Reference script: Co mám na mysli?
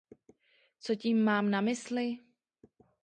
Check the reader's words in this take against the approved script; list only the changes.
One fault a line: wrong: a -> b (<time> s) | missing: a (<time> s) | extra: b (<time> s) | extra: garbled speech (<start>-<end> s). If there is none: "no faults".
extra: tím (0.9 s)